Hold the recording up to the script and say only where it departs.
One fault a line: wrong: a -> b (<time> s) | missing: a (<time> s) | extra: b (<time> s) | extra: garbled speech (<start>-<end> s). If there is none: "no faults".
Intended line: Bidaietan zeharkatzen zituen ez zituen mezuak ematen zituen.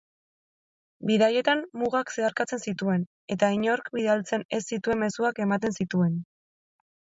extra: mugak (1.8 s)
extra: eta inork bidaltzen (3.4 s)